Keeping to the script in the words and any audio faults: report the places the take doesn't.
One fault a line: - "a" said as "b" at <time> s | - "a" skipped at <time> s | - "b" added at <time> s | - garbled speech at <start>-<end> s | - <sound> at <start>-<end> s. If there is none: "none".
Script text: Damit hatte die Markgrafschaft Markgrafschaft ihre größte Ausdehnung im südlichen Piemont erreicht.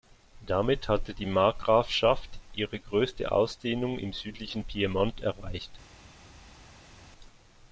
- "Markgrafschaft" skipped at 2.3 s